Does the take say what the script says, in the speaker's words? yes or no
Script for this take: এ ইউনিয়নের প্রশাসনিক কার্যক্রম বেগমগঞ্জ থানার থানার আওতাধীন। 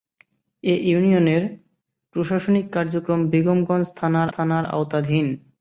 yes